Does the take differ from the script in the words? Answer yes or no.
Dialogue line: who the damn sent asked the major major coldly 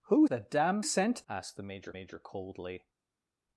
no